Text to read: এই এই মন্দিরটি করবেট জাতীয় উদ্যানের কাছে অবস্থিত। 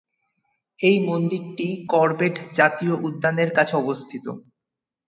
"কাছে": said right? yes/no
yes